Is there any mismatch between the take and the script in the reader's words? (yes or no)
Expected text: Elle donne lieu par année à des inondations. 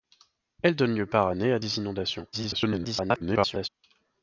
yes